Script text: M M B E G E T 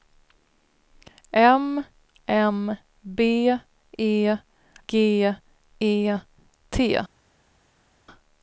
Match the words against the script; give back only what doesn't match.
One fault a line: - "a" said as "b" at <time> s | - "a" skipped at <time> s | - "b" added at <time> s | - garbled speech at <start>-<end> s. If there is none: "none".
none